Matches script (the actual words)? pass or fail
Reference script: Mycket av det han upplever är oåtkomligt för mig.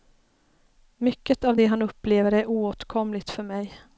pass